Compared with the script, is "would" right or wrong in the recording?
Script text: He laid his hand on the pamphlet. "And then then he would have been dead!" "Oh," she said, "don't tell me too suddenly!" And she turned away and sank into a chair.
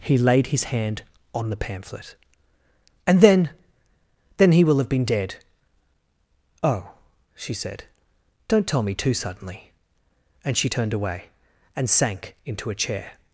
wrong